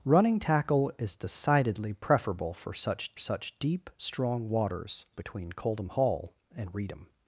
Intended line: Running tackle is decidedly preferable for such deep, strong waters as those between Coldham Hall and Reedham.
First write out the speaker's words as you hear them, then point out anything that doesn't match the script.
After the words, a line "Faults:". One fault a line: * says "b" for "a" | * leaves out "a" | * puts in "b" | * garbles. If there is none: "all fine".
Running tackle is decidedly preferable for such such deep, strong waters between Coldham Hall and Reedham.
Faults:
* puts in "such"
* leaves out "as those"